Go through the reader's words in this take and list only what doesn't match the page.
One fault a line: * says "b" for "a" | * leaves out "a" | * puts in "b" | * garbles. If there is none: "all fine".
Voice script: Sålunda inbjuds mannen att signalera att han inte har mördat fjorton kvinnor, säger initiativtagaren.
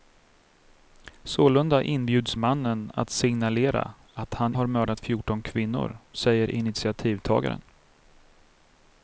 * leaves out "inte"